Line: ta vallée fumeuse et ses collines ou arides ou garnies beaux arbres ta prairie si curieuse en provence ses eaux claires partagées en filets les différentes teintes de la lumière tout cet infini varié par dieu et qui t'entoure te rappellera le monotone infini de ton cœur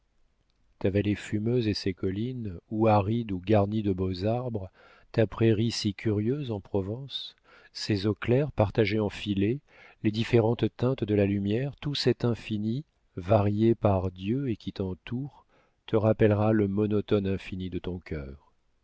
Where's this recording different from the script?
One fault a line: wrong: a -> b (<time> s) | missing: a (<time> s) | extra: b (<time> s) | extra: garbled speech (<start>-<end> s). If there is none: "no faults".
extra: de (3.8 s)